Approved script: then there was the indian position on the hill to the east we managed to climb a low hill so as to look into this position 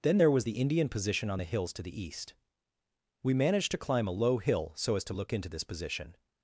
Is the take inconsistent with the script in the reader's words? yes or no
yes